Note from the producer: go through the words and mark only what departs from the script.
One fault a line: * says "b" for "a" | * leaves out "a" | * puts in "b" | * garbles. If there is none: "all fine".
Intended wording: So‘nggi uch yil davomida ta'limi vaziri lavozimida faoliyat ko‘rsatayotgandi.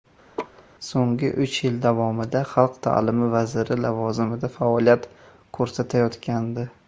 * puts in "xalq"